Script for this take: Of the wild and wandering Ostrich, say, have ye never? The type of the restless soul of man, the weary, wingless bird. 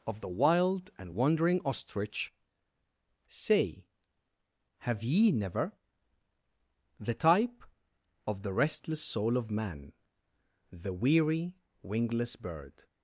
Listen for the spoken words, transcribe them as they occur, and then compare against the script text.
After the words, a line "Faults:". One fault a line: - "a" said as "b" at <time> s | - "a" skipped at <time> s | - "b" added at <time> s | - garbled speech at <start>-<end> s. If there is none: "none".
Of the wild and wandering Ostrich, say, have ye never? The type of the restless soul of man, the weary, wingless bird.
Faults:
none